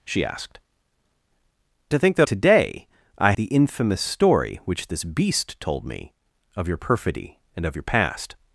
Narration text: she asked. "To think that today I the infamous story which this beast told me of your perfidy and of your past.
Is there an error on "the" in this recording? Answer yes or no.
no